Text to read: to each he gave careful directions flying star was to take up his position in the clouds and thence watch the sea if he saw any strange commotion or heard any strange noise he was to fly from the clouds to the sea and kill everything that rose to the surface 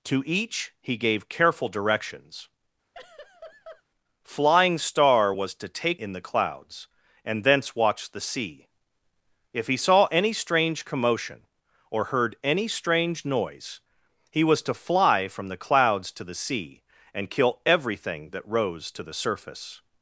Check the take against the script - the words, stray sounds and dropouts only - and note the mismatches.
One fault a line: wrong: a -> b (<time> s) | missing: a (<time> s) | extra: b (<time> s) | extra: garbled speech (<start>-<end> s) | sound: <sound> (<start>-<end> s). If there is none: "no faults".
sound: laugh (2.9-3.8 s)
missing: up his position (6.0 s)